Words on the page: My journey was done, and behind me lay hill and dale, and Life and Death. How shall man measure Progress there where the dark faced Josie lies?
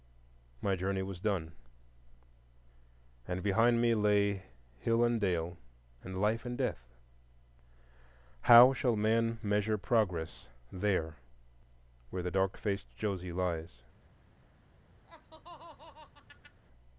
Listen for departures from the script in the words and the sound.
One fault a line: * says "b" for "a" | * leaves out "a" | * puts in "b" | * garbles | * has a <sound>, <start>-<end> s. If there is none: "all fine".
* has a laugh, 15.1-16.6 s